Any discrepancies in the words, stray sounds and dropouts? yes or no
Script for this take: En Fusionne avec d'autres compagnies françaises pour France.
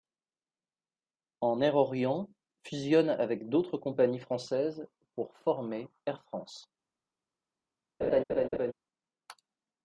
yes